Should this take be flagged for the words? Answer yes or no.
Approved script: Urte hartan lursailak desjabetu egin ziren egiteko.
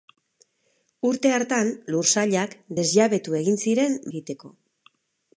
no